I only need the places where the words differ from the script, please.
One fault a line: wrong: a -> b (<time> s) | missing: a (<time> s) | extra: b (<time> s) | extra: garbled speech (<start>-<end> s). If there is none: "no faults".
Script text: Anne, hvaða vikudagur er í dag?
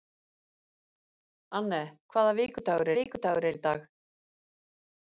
extra: vikudagur (2.9 s)